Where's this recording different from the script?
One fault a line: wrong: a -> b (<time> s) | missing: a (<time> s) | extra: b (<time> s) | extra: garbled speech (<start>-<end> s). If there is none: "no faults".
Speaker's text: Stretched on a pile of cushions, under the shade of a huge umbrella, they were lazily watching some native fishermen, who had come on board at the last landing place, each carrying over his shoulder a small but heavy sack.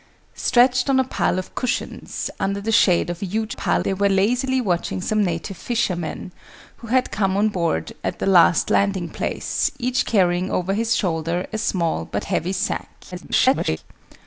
wrong: umbrella -> pile (3.5 s)
extra: garbled speech (13.1-13.8 s)